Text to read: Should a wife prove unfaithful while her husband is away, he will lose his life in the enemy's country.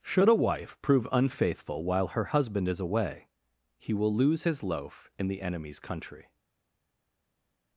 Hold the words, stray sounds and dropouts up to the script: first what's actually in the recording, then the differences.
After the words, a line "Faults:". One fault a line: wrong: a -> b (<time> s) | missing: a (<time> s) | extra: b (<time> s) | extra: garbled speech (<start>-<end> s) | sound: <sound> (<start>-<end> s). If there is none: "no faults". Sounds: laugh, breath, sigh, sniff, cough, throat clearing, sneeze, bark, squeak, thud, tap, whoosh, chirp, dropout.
Should a wife prove unfaithful while her husband is away, he will lose his loaf in the enemy's country.
Faults:
wrong: life -> loaf (4.6 s)